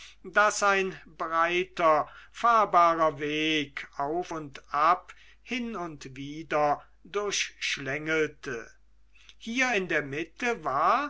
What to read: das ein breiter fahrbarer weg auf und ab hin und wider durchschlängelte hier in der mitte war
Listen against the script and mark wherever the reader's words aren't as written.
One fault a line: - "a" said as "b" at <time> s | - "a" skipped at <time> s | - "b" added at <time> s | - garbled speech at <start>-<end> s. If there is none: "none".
none